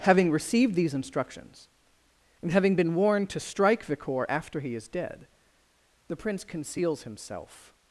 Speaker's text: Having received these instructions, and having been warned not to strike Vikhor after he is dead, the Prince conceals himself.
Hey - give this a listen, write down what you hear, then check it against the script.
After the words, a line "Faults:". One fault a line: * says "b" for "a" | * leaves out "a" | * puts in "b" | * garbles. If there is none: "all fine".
Having received these instructions, and having been warned to strike Vikhor after he is dead, the Prince conceals himself.
Faults:
* leaves out "not"